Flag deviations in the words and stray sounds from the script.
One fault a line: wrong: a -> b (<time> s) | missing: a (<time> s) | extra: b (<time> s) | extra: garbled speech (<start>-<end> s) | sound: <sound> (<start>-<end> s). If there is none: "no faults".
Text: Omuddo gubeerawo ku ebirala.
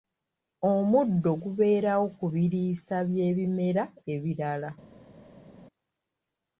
extra: biriisa by'ebimera (2.3 s)